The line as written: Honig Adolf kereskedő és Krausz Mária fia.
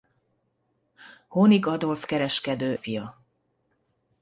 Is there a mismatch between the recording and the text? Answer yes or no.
yes